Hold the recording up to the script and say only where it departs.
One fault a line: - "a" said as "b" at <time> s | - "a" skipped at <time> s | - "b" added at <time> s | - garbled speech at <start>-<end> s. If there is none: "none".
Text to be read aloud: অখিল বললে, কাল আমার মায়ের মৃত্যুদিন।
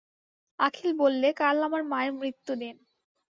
none